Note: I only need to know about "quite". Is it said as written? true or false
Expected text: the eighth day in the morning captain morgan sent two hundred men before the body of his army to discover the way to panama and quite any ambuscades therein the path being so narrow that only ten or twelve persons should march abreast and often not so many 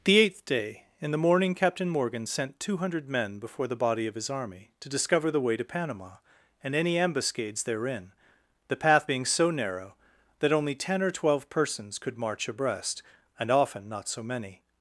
false